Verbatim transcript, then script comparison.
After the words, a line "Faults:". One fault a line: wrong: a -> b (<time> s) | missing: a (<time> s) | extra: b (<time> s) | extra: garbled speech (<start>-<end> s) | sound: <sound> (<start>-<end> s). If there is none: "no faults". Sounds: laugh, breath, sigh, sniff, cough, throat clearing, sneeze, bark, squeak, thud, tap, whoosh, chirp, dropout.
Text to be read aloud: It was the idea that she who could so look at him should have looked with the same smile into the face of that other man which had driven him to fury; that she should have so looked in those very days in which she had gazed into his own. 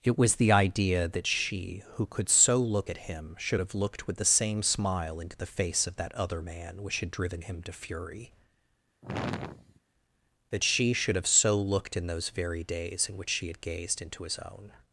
It was the idea that she who could so look at him should have looked with the same smile into the face of that other man which had driven him to fury; that she should have so looked in those very days in which she had gazed into his own.
Faults:
sound: sigh (9.0-9.8 s)